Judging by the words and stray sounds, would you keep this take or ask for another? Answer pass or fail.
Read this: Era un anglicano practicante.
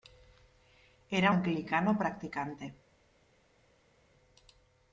fail